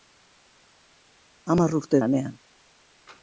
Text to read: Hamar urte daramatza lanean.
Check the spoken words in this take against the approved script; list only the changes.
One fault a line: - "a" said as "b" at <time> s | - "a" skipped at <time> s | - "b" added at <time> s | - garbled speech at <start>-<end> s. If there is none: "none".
- "daramatza" skipped at 2.0 s